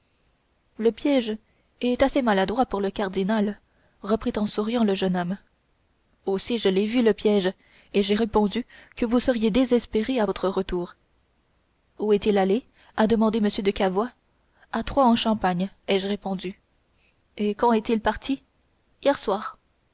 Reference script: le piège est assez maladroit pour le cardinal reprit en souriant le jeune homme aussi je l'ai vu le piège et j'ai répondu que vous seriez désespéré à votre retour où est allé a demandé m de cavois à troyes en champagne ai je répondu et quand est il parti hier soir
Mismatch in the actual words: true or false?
true